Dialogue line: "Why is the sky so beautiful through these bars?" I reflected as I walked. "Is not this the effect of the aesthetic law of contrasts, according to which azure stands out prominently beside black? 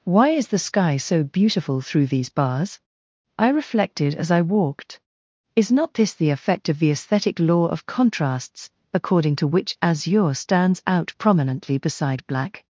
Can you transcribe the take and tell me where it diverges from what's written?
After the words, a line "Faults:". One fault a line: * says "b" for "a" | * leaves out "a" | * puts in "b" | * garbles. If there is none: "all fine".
"Why is the sky so beautiful through these bars?" I reflected as I walked. "Is not this the effect of the aesthetic law of contrasts, according to which azure stands out prominently beside black?
Faults:
all fine